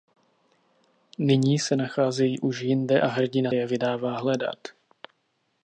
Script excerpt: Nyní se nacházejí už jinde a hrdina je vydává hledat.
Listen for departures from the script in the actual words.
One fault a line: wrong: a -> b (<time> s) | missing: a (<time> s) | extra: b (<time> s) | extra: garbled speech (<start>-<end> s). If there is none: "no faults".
no faults